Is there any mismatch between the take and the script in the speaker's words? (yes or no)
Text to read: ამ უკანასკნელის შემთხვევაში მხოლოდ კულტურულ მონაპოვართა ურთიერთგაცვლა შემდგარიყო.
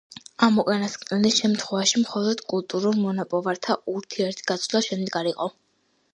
no